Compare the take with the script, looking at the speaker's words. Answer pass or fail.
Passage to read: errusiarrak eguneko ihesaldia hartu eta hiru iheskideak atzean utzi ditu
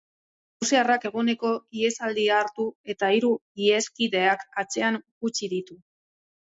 pass